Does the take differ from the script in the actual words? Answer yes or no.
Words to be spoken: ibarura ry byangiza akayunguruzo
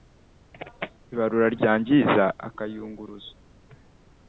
no